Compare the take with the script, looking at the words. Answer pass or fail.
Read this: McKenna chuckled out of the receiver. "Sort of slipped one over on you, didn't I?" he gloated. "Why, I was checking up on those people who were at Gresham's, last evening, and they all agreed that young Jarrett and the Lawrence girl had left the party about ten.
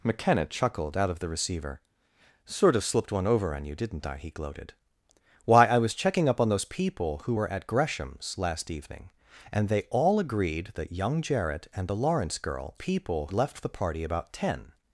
fail